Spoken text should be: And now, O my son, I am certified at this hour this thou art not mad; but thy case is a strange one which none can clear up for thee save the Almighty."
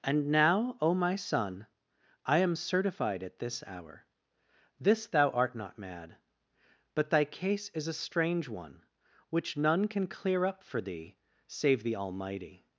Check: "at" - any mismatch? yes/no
no